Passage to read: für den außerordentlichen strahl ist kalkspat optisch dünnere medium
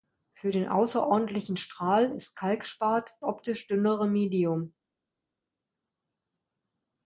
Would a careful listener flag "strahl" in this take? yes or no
no